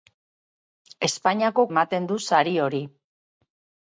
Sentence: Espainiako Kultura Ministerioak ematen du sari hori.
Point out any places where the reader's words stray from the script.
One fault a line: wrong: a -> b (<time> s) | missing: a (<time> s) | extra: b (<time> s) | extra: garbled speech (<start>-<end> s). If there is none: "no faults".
missing: Kultura Ministerioak (1.7 s)